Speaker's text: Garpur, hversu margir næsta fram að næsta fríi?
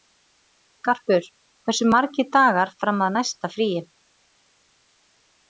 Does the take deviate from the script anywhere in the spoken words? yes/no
yes